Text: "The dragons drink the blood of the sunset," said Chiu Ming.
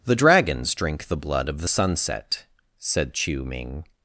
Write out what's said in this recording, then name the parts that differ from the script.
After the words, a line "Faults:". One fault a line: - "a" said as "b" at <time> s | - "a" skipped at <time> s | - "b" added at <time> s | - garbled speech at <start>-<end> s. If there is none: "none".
"The dragons drink the blood of the sunset," said Chiu Ming.
Faults:
none